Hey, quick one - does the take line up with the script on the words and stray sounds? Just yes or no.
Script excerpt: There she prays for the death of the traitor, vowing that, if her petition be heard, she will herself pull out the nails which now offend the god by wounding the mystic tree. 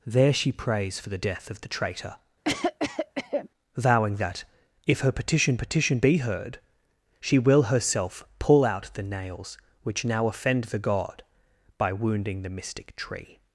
no